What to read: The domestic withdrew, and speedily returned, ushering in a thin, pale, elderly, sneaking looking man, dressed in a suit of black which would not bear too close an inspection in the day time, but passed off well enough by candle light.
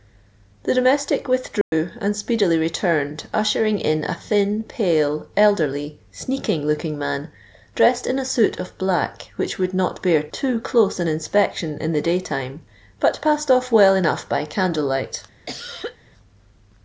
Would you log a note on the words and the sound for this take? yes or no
yes